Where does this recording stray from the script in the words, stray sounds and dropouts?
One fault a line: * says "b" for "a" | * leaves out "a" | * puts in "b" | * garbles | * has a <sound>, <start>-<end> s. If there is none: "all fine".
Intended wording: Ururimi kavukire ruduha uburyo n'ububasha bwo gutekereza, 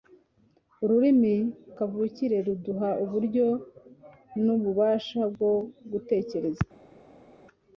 all fine